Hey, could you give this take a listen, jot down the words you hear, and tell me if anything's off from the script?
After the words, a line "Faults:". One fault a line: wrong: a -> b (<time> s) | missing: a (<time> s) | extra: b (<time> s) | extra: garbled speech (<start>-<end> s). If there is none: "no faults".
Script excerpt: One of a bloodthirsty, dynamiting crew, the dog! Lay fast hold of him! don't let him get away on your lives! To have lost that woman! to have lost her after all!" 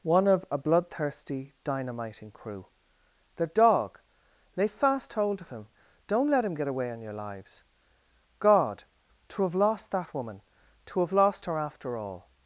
One of a bloodthirsty, dynamiting crew, the dog! Lay fast hold of him! don't let him get away on your lives! God! to have lost that woman! to have lost her after all!"
Faults:
extra: God (8.4 s)